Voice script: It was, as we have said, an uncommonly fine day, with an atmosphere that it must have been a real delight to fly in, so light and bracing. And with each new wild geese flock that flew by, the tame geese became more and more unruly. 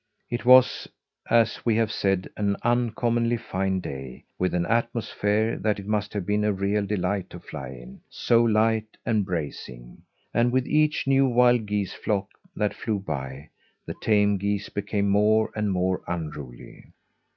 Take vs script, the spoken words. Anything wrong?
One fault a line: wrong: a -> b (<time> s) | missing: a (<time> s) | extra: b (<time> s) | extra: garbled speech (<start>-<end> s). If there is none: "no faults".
no faults